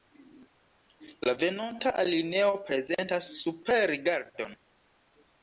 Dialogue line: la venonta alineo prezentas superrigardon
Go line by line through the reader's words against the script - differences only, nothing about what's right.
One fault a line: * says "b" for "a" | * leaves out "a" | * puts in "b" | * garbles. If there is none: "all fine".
all fine